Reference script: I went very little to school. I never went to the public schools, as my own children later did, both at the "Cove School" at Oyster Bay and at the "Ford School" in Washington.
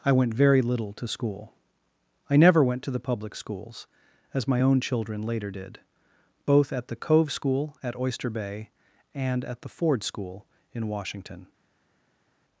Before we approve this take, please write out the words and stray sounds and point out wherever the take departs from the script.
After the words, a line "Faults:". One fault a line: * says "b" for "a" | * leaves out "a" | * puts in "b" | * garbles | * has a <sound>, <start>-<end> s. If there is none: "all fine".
I went very little to school. I never went to the public schools, as my own children later did, both at the "Cove School" at Oyster Bay and at the "Ford School" in Washington.
Faults:
all fine